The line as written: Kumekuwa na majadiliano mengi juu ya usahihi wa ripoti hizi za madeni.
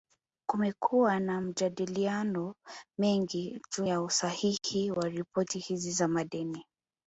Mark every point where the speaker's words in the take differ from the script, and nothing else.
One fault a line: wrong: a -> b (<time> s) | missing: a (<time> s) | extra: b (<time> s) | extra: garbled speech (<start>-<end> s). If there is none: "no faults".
no faults